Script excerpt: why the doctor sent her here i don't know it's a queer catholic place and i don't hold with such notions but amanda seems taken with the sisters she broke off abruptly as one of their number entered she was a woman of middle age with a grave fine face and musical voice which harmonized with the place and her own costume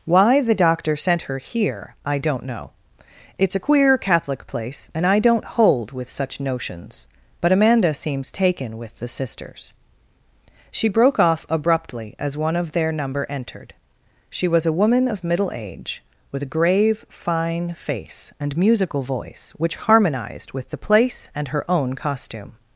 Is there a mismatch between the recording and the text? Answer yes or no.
no